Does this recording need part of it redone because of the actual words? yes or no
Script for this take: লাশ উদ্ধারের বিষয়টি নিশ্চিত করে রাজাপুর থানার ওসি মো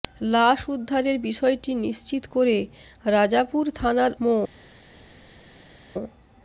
yes